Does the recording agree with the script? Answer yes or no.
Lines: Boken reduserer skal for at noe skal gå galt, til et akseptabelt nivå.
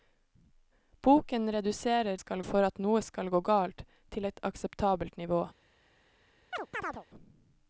yes